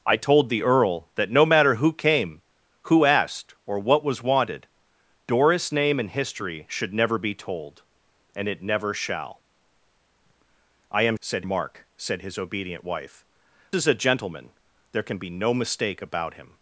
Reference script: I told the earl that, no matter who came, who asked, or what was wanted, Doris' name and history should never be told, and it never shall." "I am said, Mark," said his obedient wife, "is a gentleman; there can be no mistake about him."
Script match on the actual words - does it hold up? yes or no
yes